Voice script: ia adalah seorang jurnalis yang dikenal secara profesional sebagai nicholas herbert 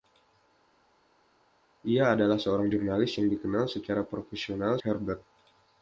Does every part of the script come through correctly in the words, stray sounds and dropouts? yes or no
no